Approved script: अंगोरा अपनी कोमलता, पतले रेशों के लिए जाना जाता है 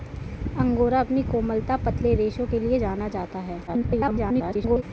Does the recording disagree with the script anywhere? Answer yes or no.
yes